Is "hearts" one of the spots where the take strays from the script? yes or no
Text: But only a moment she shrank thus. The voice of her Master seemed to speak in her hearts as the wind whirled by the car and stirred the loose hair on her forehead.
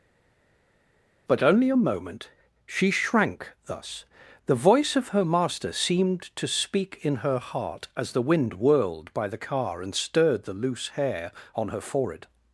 yes